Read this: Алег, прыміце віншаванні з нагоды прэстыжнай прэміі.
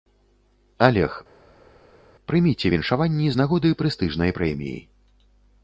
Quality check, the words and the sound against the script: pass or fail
pass